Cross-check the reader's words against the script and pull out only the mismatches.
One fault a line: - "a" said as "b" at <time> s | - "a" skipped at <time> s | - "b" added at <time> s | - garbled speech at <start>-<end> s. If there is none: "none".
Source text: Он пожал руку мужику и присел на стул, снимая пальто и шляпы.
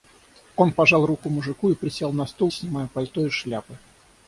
none